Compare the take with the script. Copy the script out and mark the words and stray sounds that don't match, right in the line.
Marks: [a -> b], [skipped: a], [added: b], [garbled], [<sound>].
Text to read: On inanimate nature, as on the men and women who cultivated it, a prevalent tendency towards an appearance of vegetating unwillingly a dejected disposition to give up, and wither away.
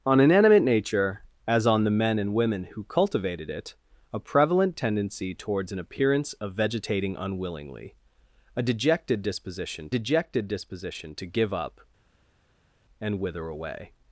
On inanimate nature, as on the men and women who cultivated it, a prevalent tendency towards an appearance of vegetating unwillingly a dejected disposition [added: dejected disposition] to give up, and wither away.